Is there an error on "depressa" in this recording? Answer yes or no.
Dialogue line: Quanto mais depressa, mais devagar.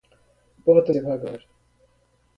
yes